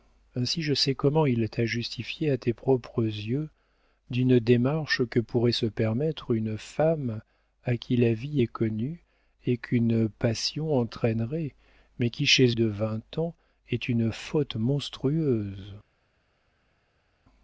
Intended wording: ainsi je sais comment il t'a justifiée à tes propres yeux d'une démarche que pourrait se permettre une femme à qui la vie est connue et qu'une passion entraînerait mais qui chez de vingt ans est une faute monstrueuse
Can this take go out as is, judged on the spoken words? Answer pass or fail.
pass